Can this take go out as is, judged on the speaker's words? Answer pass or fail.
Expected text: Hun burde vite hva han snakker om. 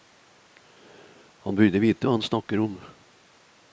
fail